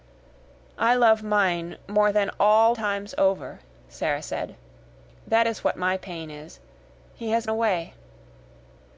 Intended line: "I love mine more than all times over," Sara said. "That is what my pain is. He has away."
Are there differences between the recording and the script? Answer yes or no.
no